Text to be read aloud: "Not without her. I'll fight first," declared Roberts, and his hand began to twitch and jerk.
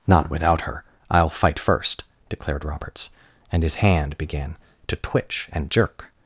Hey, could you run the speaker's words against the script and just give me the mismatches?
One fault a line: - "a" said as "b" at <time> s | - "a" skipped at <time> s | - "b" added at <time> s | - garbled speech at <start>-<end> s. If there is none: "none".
none